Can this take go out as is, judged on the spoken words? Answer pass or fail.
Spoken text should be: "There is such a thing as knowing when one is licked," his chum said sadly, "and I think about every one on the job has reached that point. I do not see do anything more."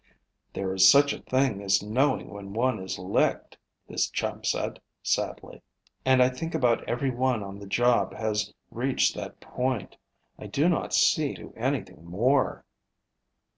pass